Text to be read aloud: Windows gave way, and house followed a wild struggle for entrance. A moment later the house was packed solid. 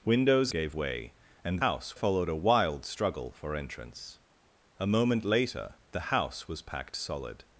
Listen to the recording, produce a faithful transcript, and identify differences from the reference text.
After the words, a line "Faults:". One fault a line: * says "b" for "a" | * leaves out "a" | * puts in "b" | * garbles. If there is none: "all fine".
Windows gave way, and house followed a wild struggle for entrance. A moment later the house was packed solid.
Faults:
all fine